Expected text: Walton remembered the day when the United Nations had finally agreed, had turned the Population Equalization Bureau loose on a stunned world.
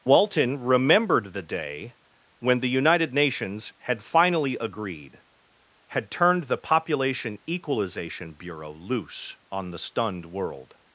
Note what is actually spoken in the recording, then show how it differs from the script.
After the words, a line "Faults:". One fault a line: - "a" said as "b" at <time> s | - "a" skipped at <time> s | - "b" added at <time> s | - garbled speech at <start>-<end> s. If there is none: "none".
Walton remembered the day when the United Nations had finally agreed, had turned the Population Equalization Bureau loose on the stunned world.
Faults:
- "a" said as "the" at 9.7 s